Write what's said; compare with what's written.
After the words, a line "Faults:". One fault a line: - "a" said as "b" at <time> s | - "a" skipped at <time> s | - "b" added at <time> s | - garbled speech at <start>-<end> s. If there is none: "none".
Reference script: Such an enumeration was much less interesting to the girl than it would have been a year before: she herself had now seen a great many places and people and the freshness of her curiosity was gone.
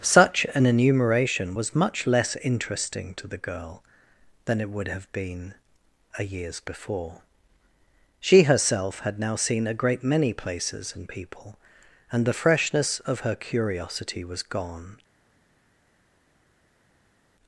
Such an enumeration was much less interesting to the girl than it would have been a years before: she herself had now seen a great many places and people and the freshness of her curiosity was gone.
Faults:
- "year" said as "years" at 6.2 s